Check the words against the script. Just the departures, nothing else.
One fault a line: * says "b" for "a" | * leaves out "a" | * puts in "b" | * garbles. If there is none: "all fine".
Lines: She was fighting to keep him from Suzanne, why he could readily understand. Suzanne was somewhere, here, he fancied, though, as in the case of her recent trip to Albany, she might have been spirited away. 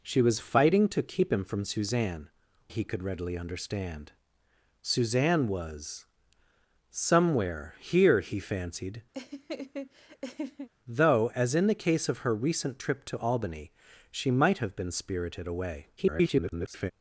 * leaves out "why"
* garbles